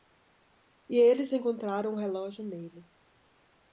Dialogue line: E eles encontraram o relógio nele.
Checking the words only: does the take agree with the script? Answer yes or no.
yes